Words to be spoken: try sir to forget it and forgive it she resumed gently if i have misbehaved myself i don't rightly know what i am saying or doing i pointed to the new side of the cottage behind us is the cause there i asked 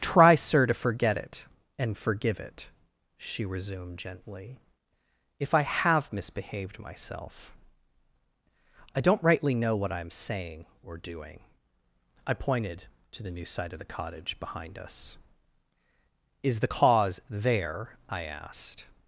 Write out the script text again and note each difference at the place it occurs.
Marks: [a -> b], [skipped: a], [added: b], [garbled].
try sir to forget it and forgive it she resumed gently if i have misbehaved myself i don't rightly know what i am saying or doing i pointed to the new side of the cottage behind us is the cause there i asked